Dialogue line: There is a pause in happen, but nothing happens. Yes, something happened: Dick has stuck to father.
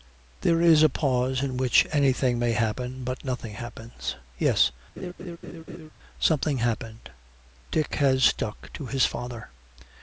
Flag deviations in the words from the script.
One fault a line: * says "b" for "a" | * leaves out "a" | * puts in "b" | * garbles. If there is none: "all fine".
* puts in "which anything may"
* puts in "his"